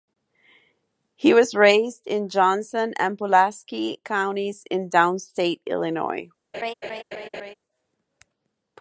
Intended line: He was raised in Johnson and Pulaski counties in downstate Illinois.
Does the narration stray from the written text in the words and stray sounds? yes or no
yes